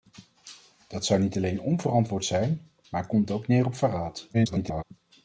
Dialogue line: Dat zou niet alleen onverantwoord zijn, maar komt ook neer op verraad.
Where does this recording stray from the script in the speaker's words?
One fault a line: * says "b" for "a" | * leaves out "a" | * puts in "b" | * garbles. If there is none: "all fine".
* garbles